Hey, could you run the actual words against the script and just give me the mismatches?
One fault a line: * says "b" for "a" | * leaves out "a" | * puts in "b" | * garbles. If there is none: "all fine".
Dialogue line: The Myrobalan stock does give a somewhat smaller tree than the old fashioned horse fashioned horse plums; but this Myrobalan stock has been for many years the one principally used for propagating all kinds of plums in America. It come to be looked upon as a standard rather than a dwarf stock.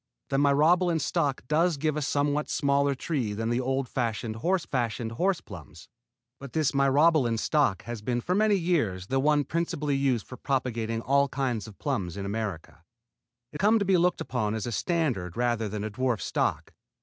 all fine